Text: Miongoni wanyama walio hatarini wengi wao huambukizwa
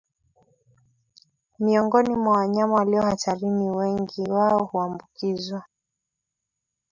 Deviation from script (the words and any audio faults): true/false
true